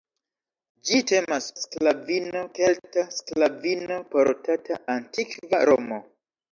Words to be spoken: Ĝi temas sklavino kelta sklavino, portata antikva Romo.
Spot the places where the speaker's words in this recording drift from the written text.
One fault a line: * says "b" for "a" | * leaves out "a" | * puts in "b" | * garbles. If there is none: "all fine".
all fine